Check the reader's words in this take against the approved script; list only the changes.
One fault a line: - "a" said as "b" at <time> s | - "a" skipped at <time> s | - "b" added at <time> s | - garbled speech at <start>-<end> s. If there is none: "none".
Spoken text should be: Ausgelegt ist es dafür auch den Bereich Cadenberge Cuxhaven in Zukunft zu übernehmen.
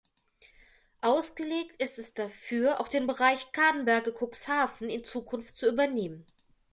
none